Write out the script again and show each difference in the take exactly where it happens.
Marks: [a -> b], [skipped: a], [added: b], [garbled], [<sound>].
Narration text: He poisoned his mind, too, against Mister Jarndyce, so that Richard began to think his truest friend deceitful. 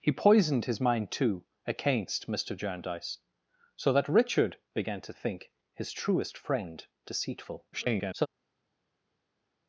He poisoned his mind, too, against Mister Jarndyce, so that Richard began to think his truest friend deceitful. [garbled]